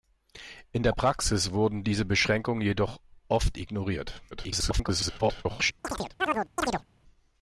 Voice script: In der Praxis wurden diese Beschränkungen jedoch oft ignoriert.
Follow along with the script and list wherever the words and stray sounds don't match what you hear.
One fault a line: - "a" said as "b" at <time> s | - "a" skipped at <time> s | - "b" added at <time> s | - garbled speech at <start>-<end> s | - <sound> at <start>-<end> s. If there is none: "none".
- garbled speech at 4.3-5.7 s
- chirp at 5.8-6.8 s